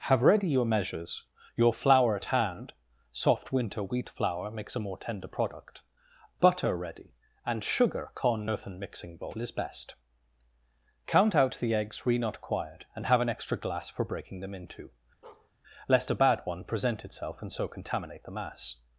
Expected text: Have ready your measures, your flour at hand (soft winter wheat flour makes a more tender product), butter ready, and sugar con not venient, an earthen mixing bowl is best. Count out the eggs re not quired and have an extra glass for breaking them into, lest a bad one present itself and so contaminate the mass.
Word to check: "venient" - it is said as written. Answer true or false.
false